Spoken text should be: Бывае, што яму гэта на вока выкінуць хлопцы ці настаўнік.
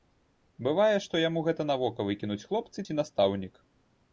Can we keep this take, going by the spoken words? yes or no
yes